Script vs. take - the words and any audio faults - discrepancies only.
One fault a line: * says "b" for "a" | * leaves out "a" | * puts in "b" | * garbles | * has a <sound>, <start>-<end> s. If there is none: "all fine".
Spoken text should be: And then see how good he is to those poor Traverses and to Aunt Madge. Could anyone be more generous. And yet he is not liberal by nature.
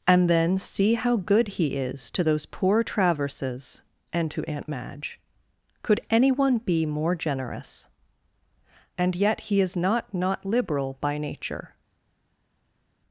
* puts in "not"